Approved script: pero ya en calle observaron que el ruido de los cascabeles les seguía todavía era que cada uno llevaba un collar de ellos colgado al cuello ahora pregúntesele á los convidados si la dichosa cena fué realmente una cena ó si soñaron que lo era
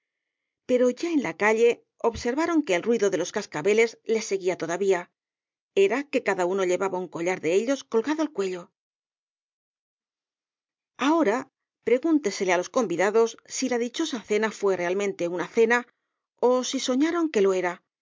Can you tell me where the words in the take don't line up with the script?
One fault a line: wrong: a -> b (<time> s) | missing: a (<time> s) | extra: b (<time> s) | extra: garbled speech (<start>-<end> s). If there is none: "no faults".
extra: la (1.3 s)